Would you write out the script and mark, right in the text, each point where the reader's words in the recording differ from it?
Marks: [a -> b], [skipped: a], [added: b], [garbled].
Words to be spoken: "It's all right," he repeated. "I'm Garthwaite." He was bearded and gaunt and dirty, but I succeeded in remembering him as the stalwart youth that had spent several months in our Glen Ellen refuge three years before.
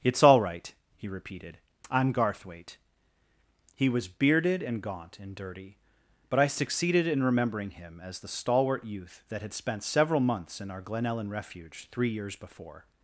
"It's all right," he repeated. "I'm Garthwaite." He was bearded and gaunt and dirty, but I succeeded in remembering him as the stalwart youth that had spent several months in our Glen Ellen refuge three years before.